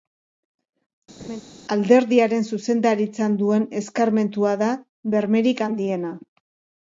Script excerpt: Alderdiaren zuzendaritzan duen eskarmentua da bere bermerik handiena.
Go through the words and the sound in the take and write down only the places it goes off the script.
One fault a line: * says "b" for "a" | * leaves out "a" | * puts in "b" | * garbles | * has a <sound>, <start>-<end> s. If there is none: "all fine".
* has a laugh, 1.2-1.4 s
* leaves out "bere"